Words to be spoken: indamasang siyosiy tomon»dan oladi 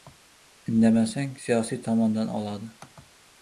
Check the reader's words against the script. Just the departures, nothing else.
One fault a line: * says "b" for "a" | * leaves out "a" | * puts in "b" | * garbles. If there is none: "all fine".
all fine